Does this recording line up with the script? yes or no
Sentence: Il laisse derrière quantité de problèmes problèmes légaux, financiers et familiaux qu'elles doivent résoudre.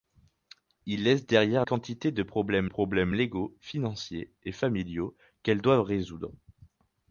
yes